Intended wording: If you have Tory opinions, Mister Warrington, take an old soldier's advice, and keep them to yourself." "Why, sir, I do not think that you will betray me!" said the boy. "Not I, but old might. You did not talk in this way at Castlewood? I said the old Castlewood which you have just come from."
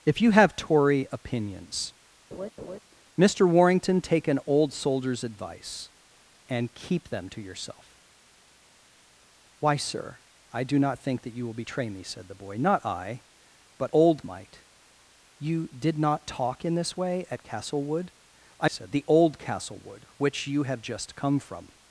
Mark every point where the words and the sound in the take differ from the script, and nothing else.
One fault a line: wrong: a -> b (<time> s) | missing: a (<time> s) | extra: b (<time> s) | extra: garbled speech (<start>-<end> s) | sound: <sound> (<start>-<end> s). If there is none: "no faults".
sound: laugh (2.3-2.8 s)